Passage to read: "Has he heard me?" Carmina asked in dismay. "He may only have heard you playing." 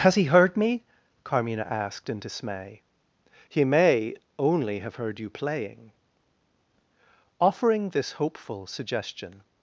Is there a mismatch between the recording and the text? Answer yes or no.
yes